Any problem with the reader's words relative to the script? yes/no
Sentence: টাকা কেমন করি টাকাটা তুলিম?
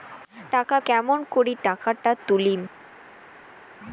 no